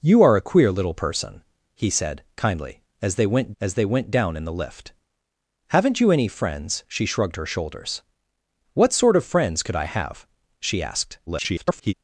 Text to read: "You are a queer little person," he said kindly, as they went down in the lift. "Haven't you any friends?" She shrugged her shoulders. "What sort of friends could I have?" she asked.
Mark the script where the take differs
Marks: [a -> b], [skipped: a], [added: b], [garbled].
"You are a queer little person," he said kindly, as they went [added: as they went] down in the lift. "Haven't you any friends?" She shrugged her shoulders. "What sort of friends could I have?" she asked. [garbled]